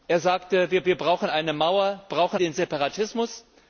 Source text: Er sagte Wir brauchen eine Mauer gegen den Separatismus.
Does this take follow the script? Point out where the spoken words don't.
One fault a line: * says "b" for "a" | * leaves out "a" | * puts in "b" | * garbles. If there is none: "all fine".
* puts in "Wir"
* says "brauchen" for "gegen"